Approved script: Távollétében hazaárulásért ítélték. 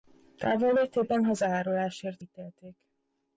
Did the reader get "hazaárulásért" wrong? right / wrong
right